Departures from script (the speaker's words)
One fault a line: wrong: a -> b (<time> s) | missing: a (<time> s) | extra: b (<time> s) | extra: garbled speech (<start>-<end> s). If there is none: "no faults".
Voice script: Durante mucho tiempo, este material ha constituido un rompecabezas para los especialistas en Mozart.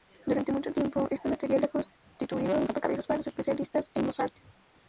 no faults